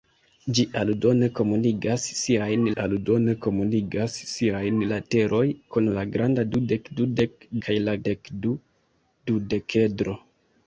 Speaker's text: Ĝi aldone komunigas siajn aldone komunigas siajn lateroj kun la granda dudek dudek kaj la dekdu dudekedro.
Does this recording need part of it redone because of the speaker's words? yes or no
no